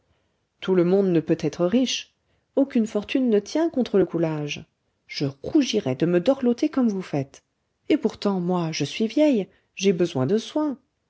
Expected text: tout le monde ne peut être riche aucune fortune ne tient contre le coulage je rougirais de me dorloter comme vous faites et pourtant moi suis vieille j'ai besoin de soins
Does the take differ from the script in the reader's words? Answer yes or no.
yes